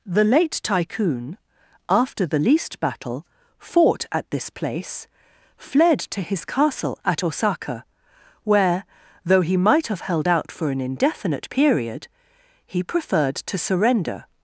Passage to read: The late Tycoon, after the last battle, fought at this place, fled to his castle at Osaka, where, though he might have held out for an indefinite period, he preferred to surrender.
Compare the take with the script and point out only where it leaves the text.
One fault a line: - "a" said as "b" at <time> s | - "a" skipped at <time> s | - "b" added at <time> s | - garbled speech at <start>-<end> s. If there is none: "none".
- "last" said as "least" at 2.4 s